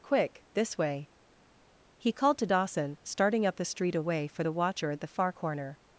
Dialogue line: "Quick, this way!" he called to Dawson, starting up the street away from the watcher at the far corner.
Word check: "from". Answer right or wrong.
wrong